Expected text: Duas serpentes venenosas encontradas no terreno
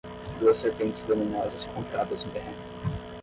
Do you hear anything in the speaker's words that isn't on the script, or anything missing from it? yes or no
no